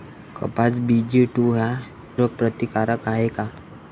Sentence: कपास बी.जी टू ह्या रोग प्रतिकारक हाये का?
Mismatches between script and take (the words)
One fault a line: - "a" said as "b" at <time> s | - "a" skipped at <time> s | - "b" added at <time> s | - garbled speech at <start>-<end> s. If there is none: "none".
none